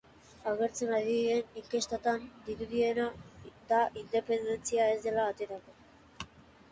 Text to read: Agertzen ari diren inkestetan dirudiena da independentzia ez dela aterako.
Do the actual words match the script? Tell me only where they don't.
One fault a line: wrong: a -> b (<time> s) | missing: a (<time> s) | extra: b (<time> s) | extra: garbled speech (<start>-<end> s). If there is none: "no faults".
no faults